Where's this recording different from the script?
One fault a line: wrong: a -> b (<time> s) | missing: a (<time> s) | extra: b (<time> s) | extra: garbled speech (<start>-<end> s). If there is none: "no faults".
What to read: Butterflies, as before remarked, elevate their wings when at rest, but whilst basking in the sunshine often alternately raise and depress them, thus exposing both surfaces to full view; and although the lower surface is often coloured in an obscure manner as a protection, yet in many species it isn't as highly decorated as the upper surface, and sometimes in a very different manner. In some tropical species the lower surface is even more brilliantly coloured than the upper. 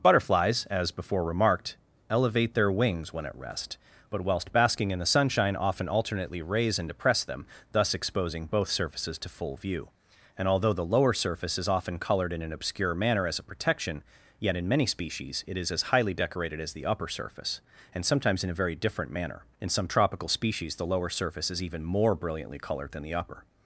wrong: isn't -> is (15.6 s)